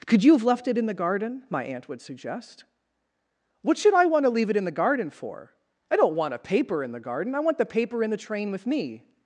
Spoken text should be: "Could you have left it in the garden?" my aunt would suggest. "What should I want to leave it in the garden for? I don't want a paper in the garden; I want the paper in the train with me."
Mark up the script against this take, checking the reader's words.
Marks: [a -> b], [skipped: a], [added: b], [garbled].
"Could you have left it in the garden?" my aunt would suggest. "What should I want to leave it in the garden for? I don't want a paper in the garden; I want the paper in the train with me."